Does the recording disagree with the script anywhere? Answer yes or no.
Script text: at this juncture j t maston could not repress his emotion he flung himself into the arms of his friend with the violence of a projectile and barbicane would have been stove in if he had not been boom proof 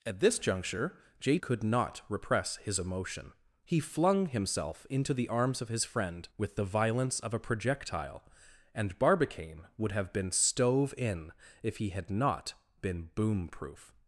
yes